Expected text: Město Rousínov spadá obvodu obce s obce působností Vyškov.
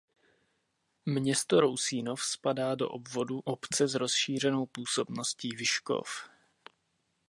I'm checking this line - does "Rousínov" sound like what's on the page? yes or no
yes